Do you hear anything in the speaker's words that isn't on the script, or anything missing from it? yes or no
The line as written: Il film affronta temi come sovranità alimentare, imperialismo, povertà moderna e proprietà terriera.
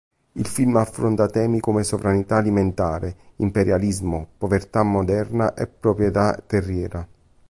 no